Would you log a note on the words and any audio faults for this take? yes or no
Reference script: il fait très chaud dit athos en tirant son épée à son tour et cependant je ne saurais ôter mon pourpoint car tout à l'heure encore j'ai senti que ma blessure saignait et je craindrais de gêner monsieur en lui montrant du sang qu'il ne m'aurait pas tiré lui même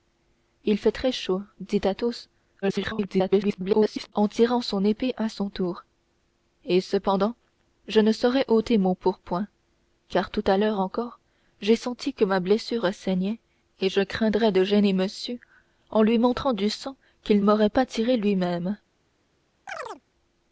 yes